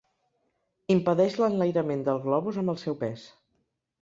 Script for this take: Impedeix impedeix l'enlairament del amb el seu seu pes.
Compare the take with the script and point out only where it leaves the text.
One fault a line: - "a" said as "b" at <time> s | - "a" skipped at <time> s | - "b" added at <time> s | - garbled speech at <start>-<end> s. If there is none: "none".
- "impedeix" skipped at 1.4 s
- "globus" added at 2.2 s
- "seu" skipped at 3.0 s